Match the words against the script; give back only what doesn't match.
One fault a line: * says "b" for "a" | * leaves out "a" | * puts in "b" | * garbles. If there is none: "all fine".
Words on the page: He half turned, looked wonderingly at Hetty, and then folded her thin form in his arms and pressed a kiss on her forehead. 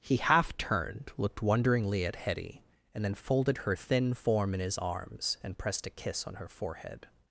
all fine